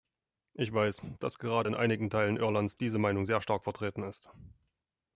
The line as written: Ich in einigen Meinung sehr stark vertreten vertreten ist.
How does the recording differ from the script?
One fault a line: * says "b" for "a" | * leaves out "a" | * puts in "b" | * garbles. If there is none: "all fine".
* puts in "weiß dass gerade"
* puts in "Teilen Irlands diese"
* leaves out "vertreten"